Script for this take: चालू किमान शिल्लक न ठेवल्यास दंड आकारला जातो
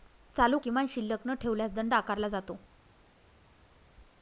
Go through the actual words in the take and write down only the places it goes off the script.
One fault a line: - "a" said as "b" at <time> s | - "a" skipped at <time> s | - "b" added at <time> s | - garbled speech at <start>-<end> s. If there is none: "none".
none